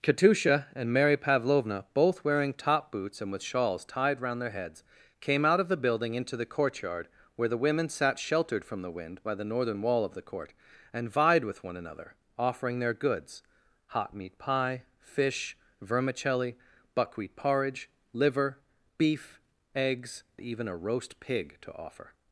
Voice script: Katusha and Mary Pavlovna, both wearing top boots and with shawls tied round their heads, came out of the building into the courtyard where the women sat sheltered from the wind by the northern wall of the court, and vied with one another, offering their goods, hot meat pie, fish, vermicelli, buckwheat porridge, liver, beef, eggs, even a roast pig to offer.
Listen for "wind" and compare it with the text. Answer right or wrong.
right